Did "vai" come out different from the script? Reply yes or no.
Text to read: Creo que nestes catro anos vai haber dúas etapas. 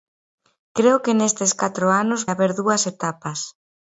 yes